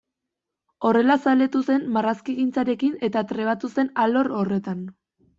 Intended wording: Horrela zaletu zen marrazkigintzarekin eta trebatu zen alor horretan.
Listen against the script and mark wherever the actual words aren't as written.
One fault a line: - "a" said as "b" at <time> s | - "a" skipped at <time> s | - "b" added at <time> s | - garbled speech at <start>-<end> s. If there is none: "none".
none